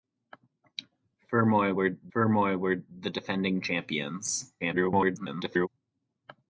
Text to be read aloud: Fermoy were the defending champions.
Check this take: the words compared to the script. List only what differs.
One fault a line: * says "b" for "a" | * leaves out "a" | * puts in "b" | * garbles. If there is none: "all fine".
* puts in "fermoy were"
* garbles